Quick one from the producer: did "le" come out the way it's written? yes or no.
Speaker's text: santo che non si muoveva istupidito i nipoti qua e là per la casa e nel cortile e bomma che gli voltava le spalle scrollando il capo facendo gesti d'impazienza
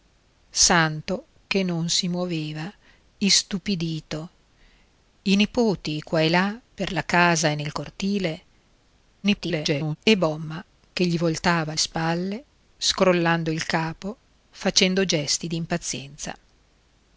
no